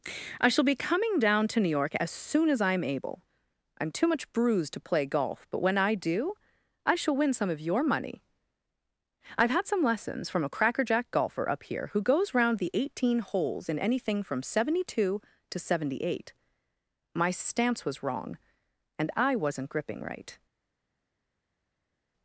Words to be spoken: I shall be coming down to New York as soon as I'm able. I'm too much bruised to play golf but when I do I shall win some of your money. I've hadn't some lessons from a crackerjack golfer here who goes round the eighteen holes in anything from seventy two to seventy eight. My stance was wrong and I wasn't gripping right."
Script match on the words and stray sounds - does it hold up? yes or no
no